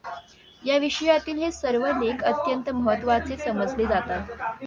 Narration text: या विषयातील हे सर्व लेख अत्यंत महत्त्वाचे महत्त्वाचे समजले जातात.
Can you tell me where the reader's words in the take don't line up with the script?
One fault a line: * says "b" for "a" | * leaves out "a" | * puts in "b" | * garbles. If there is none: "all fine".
* leaves out "महत्त्वाचे"